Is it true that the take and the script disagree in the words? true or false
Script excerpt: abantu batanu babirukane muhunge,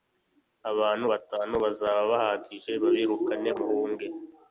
true